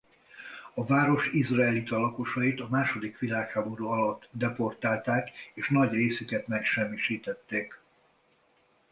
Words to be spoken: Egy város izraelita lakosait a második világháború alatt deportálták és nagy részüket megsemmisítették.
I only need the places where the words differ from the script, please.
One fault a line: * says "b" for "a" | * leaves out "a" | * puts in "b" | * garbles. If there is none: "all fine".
* says "A" for "Egy"